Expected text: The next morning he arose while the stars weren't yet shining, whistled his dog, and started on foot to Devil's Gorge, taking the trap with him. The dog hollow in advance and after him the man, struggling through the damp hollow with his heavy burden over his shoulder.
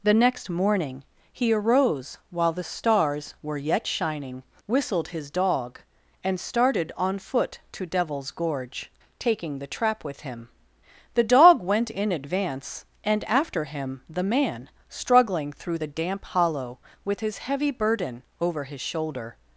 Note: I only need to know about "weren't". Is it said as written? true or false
false